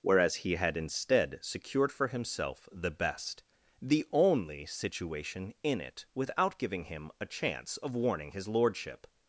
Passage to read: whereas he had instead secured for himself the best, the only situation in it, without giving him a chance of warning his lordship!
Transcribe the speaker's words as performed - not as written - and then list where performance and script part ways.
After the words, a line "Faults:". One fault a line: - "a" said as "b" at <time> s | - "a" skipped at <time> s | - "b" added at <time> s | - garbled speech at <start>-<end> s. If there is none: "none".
whereas he had instead secured for himself the best, the only situation in it, without giving him a chance of warning his lordship!
Faults:
none